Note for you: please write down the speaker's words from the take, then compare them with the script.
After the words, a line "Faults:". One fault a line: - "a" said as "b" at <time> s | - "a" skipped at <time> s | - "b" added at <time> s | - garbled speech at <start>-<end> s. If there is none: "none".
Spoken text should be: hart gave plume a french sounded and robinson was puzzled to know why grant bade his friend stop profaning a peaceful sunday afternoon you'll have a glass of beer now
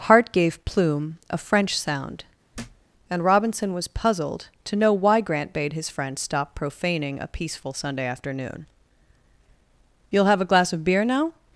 hart gave plume a french sound and robinson was puzzled to know why grant bade his friend stop profaning a peaceful sunday afternoon you'll have a glass of beer now
Faults:
- "sounded" said as "sound" at 1.8 s